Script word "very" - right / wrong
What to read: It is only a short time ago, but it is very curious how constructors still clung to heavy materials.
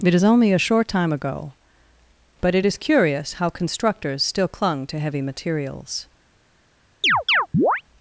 wrong